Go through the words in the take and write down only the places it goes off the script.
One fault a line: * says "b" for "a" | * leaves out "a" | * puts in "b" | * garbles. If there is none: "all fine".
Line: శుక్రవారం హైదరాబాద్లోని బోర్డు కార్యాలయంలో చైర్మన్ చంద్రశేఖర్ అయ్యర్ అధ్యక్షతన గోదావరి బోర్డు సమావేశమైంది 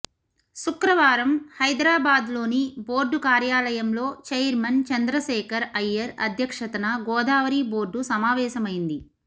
all fine